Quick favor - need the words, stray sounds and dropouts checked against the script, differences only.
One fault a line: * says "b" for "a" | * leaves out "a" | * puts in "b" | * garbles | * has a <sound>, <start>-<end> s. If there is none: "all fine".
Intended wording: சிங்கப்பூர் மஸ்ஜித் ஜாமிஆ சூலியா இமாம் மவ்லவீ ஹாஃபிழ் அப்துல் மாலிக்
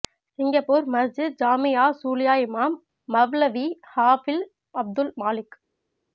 all fine